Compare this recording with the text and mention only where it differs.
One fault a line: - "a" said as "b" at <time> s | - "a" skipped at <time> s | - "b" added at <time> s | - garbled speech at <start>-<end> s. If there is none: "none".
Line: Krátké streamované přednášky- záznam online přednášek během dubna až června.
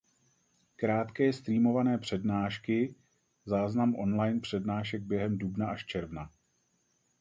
none